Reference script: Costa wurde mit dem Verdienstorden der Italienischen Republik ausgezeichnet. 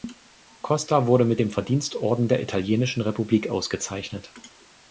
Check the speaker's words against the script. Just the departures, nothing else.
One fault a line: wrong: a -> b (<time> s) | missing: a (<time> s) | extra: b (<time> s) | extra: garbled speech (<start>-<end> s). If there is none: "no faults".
no faults